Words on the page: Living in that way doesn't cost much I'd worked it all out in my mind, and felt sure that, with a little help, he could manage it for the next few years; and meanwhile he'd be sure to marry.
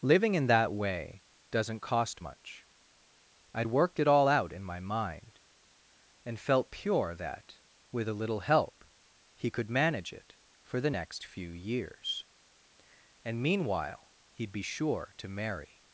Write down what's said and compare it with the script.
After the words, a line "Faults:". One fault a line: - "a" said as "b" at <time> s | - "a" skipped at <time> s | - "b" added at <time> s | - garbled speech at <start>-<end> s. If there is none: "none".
Living in that way doesn't cost much I'd worked it all out in my mind, and felt pure that, with a little help, he could manage it for the next few years; and meanwhile he'd be sure to marry.
Faults:
- "sure" said as "pure" at 6.7 s